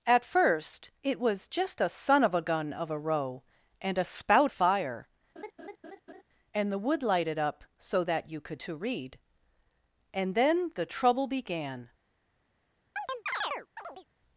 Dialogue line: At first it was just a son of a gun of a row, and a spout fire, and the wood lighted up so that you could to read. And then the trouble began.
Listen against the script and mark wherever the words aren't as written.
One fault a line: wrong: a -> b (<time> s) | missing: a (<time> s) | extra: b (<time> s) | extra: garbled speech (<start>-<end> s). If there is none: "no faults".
no faults